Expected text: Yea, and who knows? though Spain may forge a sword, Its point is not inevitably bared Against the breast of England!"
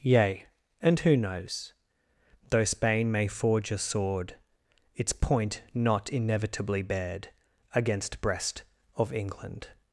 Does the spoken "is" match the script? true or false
false